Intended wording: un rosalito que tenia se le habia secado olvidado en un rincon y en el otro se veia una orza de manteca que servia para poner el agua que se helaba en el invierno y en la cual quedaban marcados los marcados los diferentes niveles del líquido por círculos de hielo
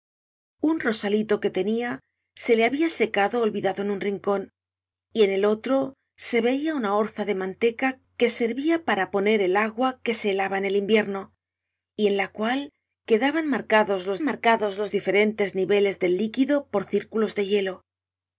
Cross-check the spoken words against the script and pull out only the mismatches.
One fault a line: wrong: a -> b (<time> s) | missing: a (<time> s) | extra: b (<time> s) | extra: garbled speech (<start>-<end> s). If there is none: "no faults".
no faults